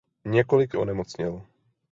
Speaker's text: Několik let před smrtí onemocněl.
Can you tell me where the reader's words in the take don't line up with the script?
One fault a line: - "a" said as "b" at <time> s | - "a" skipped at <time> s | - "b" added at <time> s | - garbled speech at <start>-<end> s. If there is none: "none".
- "let před smrtí" skipped at 0.8 s